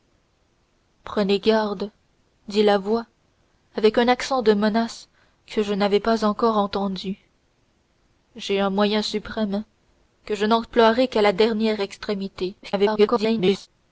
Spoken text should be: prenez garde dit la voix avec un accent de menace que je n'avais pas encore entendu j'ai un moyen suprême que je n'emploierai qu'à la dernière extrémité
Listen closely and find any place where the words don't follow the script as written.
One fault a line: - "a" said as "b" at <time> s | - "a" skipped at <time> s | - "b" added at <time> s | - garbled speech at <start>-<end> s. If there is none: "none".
- garbled speech at 12.6-13.7 s